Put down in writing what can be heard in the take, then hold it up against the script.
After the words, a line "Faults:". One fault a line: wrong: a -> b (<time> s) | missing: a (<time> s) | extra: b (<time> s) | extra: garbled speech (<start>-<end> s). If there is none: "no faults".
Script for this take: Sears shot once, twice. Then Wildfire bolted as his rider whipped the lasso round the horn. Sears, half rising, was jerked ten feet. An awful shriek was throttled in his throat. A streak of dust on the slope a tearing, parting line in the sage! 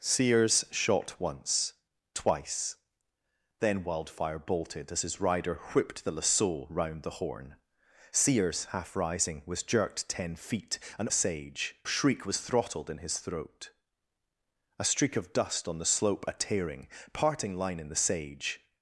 Sears shot once, twice. Then Wildfire bolted as his rider whipped the lasso round the horn. Sears, half rising, was jerked ten feet. An sage shriek was throttled in his throat. A streak of dust on the slope a tearing, parting line in the sage!
Faults:
wrong: awful -> sage (11.1 s)